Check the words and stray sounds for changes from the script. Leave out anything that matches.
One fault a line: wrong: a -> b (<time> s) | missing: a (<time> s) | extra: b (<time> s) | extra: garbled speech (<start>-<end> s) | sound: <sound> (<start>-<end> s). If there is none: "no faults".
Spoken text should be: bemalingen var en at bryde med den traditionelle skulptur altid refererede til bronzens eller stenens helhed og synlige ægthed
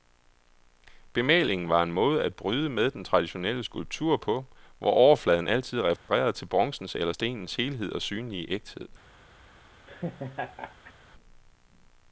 extra: måde (1.9 s)
extra: på hvor overfladen (4.2 s)
sound: dropout (6.0-6.1 s)
sound: laugh (9.9-10.9 s)